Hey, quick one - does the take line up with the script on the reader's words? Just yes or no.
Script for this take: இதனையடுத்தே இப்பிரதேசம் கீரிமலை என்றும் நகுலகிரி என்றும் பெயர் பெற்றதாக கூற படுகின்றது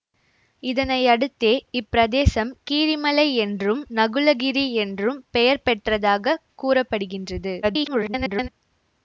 no